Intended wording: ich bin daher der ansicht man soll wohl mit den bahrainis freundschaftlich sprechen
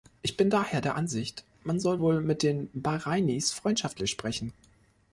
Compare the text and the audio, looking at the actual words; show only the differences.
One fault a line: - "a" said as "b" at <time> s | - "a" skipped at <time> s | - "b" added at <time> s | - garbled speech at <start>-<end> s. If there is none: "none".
none